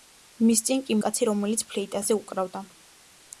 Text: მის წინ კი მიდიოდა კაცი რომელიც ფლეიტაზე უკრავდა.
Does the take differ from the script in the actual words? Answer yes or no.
yes